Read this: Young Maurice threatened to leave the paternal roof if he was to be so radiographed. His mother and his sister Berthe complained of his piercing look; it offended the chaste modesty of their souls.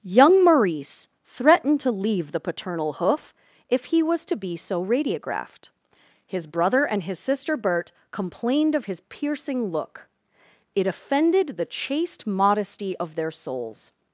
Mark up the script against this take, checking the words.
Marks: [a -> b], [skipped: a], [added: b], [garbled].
Young Maurice threatened to leave the paternal [roof -> hoof] if he was to be so radiographed. His [mother -> brother] and his sister Berthe complained of his piercing look; it offended the chaste modesty of their souls.